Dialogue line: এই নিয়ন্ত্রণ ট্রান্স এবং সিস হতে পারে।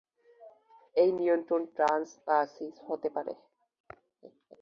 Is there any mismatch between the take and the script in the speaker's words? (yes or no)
yes